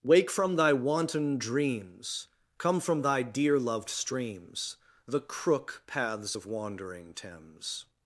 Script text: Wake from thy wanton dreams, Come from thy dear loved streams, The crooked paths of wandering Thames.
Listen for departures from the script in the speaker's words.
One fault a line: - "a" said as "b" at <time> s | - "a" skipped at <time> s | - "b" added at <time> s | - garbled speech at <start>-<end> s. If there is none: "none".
- "crooked" said as "crook" at 5.2 s